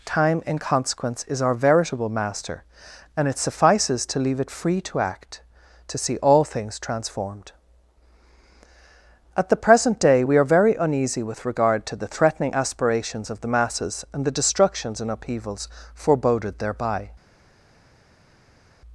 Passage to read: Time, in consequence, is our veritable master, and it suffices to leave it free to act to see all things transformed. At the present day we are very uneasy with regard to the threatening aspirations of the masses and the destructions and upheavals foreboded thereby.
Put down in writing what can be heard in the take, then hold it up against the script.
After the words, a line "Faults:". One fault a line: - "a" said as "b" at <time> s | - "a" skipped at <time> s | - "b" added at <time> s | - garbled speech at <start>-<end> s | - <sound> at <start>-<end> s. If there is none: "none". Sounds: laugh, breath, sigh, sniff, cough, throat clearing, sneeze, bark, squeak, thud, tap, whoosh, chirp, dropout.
Time, in consequence, is our veritable master, and it suffices to leave it free to act to see all things transformed. At the present day we are very uneasy with regard to the threatening aspirations of the masses and the destructions and upheavals foreboded thereby.
Faults:
none